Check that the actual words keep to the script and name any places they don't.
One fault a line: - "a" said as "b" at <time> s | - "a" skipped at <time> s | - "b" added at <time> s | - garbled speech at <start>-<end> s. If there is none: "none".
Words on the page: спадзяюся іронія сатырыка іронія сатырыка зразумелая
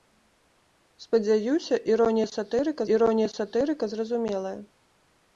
none